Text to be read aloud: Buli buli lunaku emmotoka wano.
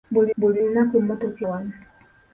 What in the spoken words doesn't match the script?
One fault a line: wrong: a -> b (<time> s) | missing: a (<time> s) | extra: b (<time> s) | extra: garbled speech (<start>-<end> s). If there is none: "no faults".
no faults